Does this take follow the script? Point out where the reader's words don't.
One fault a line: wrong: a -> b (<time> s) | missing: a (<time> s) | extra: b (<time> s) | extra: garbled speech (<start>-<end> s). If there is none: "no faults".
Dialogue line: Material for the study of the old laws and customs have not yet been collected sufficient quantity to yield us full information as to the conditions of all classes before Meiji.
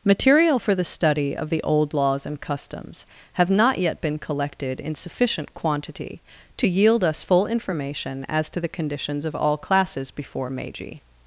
extra: in (4.8 s)